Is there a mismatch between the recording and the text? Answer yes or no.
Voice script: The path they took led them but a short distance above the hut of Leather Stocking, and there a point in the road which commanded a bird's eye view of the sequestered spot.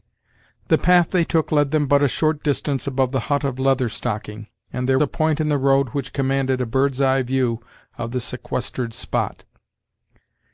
no